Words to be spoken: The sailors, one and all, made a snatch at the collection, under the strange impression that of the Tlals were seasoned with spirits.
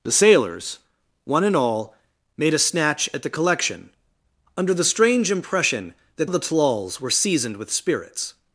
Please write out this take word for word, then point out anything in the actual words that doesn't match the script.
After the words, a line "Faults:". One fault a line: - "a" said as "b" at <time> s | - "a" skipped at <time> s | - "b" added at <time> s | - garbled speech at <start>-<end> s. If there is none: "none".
The sailors, one and all, made a snatch at the collection, under the strange impression that of the Tlals were seasoned with spirits.
Faults:
none